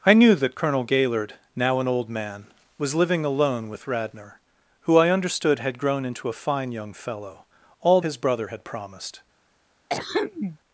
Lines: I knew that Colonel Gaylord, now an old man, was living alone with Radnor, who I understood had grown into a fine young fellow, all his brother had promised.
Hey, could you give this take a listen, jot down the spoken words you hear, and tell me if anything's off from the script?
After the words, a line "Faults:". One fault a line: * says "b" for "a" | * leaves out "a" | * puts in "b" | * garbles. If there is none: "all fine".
I knew that Colonel Gaylord, now an old man, was living alone with Radnor, who I understood had grown into a fine young fellow, all his brother had promised.
Faults:
all fine